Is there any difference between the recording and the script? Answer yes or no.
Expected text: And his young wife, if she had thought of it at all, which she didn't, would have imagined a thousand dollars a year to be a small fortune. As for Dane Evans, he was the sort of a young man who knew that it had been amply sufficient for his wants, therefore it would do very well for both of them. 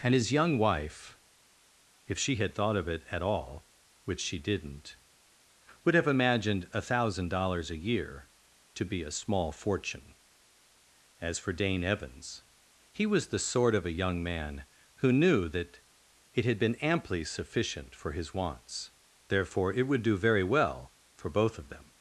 no